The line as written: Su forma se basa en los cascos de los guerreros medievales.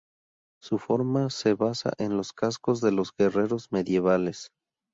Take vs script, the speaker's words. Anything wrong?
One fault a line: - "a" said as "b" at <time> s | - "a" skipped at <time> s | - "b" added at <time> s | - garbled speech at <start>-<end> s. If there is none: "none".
none